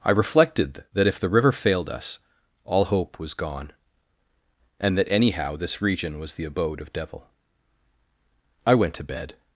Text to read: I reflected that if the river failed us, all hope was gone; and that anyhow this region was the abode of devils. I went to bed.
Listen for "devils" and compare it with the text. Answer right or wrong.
wrong